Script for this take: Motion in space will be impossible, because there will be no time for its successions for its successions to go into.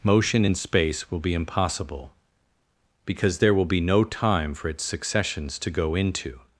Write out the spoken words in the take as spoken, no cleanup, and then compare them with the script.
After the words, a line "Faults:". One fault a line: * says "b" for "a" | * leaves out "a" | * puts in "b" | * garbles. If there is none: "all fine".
Motion in space will be impossible, because there will be no time for its successions to go into.
Faults:
* leaves out "for its successions"